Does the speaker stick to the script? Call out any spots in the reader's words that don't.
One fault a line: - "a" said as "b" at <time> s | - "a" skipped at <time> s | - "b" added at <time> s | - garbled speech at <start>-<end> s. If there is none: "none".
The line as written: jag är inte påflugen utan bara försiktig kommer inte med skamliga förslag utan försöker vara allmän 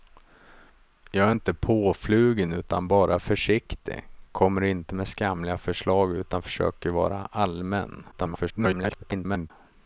- garbled speech at 8.1-9.5 s